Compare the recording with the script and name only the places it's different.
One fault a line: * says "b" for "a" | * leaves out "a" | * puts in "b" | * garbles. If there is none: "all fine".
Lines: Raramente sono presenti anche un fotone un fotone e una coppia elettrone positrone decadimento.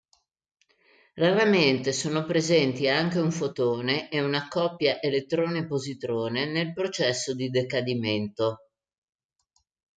* leaves out "un fotone"
* puts in "nel processo di"